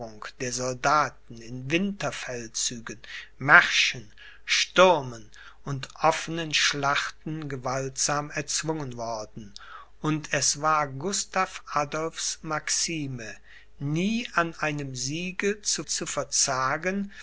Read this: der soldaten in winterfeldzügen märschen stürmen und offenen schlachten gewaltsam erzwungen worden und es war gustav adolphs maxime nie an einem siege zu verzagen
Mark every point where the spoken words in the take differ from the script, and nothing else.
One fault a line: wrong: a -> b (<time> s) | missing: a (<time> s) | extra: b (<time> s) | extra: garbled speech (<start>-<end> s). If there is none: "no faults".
extra: zu (15.9 s)